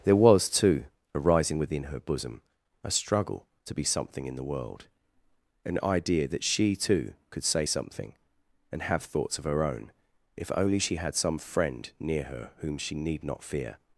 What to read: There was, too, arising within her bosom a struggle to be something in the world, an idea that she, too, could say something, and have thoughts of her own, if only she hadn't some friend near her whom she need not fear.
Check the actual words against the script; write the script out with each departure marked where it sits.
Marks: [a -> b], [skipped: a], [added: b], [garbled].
There was, too, arising within her bosom a struggle to be something in the world, an idea that she, too, could say something, and have thoughts of her own, if only she [hadn't -> had] some friend near her whom she need not fear.